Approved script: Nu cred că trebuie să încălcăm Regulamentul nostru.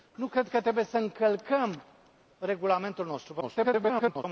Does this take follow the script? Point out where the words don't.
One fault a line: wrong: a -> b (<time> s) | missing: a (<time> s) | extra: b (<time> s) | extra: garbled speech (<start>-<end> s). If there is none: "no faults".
extra: garbled speech (3.4-4.2 s)